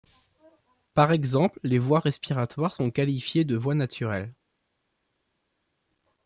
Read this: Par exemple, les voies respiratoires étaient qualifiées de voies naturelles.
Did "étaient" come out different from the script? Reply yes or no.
yes